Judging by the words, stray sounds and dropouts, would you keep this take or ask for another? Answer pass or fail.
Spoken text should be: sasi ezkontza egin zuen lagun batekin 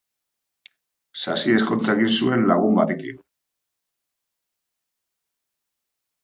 pass